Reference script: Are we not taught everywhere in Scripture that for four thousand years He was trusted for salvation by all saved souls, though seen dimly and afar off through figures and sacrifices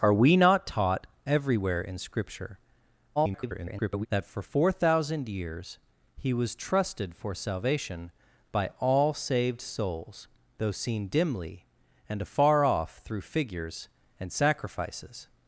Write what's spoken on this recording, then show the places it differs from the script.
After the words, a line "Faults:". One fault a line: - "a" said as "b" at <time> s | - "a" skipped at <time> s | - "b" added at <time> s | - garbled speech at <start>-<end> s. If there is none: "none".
Are we not taught everywhere in Scripture [garbled] that for four thousand years He was trusted for salvation by all saved souls, though seen dimly and afar off through figures and sacrifices
Faults:
- garbled speech at 3.2-4.1 s